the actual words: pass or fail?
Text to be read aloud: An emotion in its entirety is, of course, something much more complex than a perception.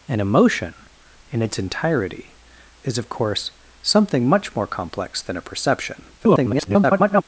fail